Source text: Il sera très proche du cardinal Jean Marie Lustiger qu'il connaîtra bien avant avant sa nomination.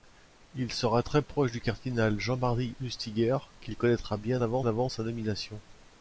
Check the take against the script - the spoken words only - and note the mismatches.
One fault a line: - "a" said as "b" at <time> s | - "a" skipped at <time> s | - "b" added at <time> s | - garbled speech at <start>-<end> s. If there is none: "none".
none